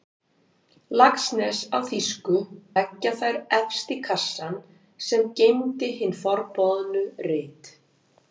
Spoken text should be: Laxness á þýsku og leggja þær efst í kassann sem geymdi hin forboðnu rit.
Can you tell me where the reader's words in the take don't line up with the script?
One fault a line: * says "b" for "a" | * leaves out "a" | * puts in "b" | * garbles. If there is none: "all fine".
* leaves out "og"